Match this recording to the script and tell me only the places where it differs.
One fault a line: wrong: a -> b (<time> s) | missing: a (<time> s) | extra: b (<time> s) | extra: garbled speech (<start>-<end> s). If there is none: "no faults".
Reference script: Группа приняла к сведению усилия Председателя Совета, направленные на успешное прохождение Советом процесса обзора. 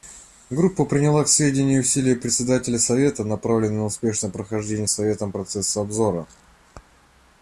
no faults